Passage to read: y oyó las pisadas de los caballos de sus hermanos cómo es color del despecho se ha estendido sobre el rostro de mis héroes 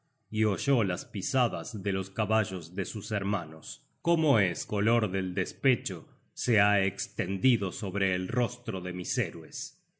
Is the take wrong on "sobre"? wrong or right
right